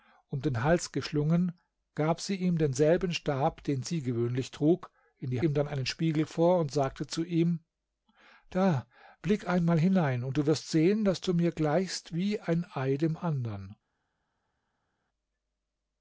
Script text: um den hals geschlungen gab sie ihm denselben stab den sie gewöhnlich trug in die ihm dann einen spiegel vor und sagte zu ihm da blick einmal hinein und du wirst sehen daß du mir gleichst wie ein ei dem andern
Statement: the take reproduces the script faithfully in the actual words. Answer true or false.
true